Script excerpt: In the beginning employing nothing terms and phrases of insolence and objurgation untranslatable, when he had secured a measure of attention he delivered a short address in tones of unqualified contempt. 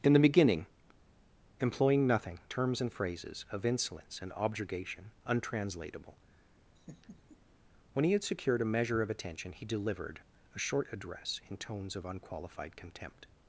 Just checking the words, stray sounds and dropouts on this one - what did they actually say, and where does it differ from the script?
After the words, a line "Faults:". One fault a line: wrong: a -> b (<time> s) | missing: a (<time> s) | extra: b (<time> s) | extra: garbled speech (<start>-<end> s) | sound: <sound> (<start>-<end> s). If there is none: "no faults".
In the beginning employing nothing terms and phrases of insolence and objurgation untranslatable, when he had secured a measure of attention he delivered a short address in tones of unqualified contempt.
Faults:
sound: laugh (6.8-7.4 s)